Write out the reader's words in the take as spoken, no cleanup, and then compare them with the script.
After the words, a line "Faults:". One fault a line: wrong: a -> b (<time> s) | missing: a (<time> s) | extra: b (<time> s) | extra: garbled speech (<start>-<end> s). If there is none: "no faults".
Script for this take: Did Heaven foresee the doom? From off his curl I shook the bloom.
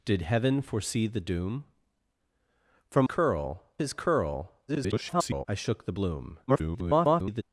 Did Heaven foresee the doom? From curl his curl [garbled] I shook the bloom. [garbled]
Faults:
wrong: off -> curl (3.0 s)
extra: garbled speech (4.7-5.5 s)
extra: garbled speech (6.5-7.4 s)